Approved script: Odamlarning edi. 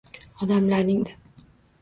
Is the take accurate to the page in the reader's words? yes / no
yes